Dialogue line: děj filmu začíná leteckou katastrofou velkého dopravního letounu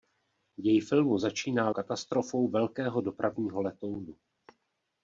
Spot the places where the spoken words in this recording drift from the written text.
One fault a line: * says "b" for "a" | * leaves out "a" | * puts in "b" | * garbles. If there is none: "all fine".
* leaves out "leteckou"